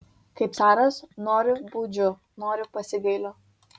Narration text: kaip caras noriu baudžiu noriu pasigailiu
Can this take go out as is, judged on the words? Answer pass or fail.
pass